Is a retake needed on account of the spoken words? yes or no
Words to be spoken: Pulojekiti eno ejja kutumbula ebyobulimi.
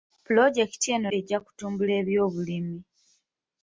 no